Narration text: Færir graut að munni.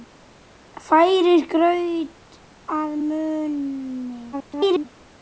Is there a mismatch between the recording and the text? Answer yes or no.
yes